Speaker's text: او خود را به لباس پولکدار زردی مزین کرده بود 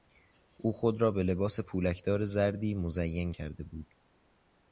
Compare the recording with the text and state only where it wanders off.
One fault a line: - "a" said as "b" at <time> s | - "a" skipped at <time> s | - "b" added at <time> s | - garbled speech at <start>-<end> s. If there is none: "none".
none